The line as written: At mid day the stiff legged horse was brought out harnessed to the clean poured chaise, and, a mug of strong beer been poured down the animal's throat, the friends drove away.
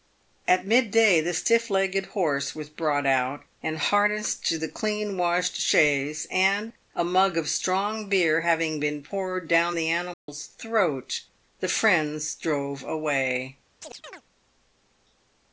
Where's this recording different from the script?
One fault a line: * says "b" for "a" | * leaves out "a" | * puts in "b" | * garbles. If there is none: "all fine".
* puts in "and"
* says "washed" for "poured"
* puts in "having"